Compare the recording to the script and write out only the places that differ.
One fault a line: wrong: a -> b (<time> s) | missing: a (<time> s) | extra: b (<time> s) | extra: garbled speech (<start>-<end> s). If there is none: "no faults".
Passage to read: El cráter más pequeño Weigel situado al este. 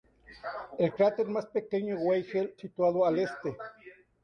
no faults